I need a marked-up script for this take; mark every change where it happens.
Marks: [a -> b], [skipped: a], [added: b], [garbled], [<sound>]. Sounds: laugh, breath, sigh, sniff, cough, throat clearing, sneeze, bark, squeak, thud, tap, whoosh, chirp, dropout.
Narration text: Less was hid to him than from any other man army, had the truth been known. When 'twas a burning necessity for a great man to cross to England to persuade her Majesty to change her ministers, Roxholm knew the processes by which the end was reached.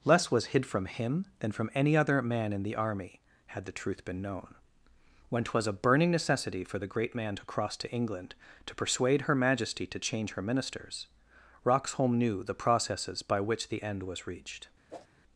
Less was hid [to -> from] him than from any other man [added: in the] army, had the truth been known. When 'twas a burning necessity for [a -> the] great man to cross to England to persuade her Majesty to change her ministers, Roxholm knew the processes by which the end was reached. [whoosh]